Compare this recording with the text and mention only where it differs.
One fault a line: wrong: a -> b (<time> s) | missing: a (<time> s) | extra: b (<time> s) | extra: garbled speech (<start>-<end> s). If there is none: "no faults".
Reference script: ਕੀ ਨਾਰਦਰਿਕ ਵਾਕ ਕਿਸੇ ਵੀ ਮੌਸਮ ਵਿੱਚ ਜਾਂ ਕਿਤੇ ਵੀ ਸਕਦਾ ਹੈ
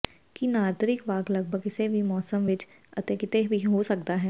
extra: ਲਗਭਗ (1.3 s)
wrong: ਜਾਂ -> ਅਤੇ (3.0 s)
extra: ਹੋ (3.7 s)